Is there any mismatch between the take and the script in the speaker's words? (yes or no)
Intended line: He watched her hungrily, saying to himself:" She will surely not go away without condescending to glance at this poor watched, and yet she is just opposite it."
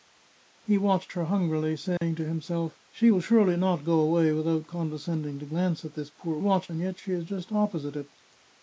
no